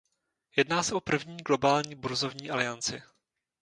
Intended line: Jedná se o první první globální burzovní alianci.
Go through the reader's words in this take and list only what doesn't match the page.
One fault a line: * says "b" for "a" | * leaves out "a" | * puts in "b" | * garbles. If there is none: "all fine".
* leaves out "první"